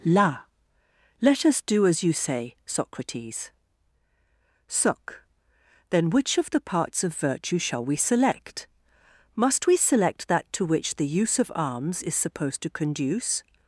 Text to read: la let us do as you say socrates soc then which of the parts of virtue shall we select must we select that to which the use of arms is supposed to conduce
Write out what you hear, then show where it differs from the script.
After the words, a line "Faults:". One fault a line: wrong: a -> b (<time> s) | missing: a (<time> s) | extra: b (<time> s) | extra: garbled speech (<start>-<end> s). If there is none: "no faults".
la let us do as you say socrates soc then which of the parts of virtue shall we select must we select that to which the use of arms is supposed to conduce
Faults:
no faults